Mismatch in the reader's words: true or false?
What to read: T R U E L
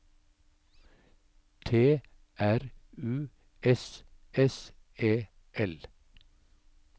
true